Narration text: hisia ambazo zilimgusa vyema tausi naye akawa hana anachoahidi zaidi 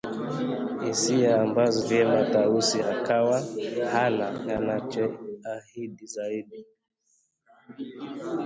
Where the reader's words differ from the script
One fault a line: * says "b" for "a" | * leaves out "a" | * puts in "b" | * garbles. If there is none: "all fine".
* leaves out "zilimgusa"
* leaves out "naye"